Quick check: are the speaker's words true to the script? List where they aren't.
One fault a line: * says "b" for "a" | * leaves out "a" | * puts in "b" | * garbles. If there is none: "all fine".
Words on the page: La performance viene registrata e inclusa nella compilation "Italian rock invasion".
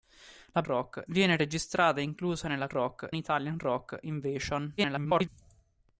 * says "rock" for "performance"
* says "rock" for "compilation"
* garbles